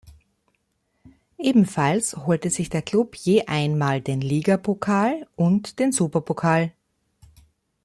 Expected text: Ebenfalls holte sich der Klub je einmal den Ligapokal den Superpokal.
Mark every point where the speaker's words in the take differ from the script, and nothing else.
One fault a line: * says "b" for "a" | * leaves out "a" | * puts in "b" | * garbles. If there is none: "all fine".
* puts in "und"